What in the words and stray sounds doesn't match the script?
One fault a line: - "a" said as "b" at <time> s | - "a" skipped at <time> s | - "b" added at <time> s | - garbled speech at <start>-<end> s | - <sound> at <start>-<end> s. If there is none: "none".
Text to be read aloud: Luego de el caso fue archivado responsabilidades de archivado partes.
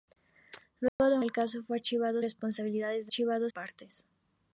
- dropout at 0.9-1.0 s